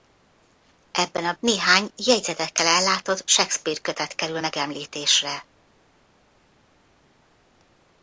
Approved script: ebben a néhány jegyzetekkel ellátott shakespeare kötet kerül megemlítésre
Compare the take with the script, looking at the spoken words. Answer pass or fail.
pass